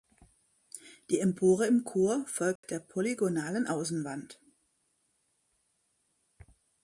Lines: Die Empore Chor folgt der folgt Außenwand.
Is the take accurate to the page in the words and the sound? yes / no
no